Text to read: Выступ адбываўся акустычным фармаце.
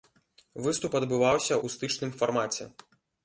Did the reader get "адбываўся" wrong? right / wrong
right